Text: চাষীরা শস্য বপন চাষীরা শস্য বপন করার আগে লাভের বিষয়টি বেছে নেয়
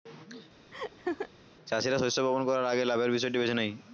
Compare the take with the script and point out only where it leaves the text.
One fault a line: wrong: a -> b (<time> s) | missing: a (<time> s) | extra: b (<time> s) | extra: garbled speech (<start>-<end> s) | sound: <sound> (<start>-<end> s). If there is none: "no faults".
sound: laugh (0.7-1.3 s)
missing: চাষীরা শস্য বপন (2.4 s)